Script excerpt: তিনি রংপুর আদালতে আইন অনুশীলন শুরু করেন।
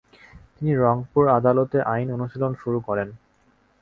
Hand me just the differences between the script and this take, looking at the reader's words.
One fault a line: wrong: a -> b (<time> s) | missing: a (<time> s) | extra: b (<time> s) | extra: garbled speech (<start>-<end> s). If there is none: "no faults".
no faults